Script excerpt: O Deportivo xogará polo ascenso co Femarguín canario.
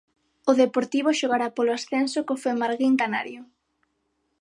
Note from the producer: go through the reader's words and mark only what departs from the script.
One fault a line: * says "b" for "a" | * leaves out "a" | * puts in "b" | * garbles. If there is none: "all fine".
all fine